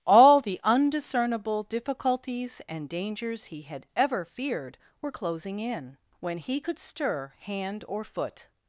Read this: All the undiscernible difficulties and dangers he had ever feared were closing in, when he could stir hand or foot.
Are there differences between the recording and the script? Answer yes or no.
no